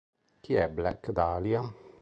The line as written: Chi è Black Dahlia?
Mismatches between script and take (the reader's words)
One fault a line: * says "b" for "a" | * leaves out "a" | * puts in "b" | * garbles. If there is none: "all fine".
all fine